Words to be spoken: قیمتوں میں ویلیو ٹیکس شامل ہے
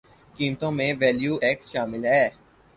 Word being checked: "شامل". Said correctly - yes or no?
yes